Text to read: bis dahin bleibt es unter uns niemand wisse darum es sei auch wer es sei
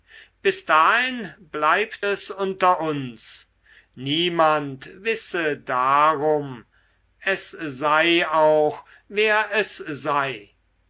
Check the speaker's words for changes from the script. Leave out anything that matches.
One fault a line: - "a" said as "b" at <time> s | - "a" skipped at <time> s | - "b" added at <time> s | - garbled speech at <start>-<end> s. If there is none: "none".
none